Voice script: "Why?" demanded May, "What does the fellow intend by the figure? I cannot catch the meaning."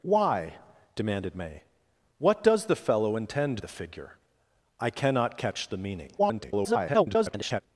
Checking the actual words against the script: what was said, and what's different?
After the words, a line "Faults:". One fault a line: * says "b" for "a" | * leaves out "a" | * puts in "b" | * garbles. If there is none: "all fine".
"Why?" demanded May, "What does the fellow intend the figure? I cannot catch the meaning." [garbled]
Faults:
* leaves out "by"
* garbles